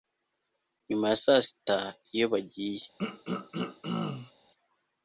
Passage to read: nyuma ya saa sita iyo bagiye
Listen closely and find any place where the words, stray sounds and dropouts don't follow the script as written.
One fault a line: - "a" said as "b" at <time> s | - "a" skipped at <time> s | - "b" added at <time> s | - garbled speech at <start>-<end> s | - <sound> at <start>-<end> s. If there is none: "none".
- throat clearing at 3.0-4.3 s